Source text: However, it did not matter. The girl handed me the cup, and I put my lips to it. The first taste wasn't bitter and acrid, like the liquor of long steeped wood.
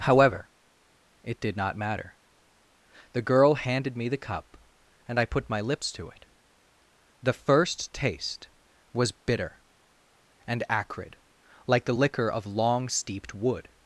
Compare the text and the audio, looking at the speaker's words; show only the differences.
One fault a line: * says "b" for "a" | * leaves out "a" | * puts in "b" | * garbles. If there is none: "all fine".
* says "was" for "wasn't"